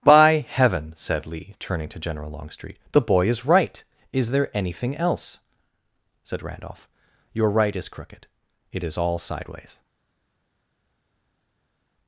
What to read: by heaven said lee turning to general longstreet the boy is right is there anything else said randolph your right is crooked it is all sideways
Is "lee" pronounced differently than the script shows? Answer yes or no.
no